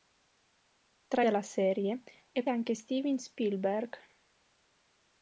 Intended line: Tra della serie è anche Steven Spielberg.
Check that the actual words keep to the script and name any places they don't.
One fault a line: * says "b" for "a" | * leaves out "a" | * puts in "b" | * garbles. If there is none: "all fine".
all fine